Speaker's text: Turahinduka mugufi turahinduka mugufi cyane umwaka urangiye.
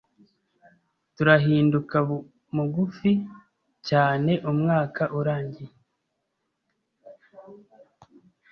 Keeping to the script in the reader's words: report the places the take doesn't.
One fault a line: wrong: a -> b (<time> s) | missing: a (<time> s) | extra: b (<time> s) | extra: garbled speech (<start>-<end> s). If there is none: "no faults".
missing: turahinduka mugufi (3.1 s)